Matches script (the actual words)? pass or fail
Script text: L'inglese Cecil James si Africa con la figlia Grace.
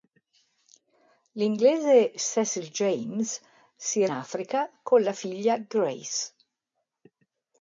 pass